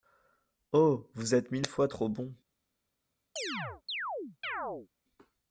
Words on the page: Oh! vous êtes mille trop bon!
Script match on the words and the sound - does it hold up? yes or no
no